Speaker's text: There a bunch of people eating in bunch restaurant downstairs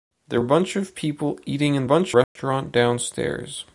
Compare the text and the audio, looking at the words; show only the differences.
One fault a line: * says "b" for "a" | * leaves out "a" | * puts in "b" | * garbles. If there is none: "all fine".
all fine